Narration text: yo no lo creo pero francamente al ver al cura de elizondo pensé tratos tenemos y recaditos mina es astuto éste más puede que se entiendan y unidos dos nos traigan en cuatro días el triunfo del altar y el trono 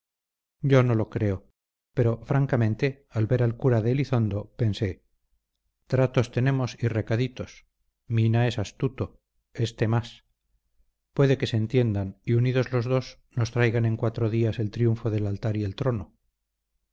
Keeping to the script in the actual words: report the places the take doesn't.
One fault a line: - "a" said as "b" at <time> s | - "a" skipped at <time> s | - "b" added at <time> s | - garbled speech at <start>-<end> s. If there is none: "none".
- "los" added at 12.7 s